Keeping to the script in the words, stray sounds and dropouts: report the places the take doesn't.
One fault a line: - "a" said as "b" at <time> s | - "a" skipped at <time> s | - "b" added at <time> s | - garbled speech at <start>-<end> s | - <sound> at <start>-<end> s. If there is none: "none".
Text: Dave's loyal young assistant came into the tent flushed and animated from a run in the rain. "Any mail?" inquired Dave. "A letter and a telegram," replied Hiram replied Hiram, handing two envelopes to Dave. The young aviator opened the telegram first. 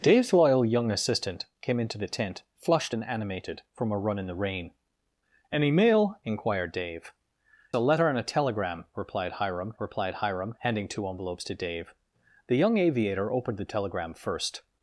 none